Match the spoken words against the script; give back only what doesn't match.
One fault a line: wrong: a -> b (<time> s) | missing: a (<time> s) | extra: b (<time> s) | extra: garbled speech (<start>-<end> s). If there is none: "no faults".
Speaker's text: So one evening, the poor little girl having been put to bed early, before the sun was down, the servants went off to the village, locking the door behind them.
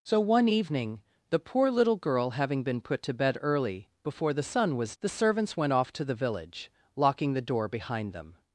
missing: down (5.0 s)